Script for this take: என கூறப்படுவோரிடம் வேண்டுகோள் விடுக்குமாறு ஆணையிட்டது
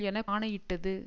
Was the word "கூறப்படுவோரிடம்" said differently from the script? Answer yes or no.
yes